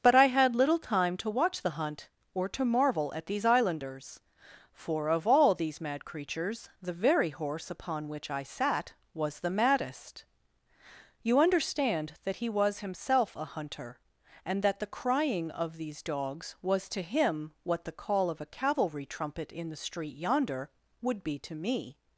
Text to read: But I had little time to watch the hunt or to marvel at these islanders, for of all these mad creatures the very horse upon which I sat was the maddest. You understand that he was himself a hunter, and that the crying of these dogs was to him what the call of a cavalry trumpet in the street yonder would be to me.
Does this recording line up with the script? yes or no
yes